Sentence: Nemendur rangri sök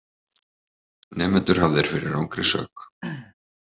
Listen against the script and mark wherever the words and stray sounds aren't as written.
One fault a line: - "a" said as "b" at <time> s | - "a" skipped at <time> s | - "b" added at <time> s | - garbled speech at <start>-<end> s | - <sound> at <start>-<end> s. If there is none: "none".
- "hafðir fyrir" added at 1.6 s
- throat clearing at 3.0-3.3 s